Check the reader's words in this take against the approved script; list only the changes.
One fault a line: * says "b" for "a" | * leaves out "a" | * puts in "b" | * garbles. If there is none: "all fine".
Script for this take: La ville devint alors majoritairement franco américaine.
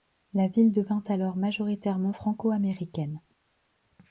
all fine